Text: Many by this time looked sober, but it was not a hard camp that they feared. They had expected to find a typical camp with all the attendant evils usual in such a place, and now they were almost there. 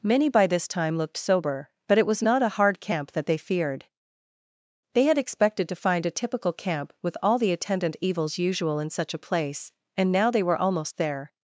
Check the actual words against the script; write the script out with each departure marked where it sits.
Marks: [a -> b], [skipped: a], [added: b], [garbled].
Many by this time looked sober, but it was not a hard camp that they feared. They had expected to find a typical camp with all the attendant evils usual in such a place, and now they were almost there.